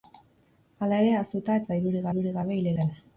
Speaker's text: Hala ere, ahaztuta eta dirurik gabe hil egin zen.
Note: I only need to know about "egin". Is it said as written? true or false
false